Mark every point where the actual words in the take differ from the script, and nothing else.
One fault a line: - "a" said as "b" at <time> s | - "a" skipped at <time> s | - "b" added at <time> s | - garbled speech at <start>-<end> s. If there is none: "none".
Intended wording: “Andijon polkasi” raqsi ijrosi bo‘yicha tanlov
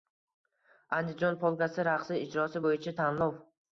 none